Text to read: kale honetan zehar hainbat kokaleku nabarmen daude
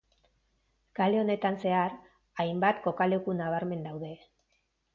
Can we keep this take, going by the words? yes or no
yes